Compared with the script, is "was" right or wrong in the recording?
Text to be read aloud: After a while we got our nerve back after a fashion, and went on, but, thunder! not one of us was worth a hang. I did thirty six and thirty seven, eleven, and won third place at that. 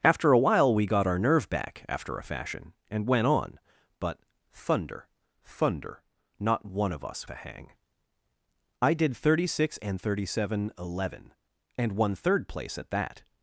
wrong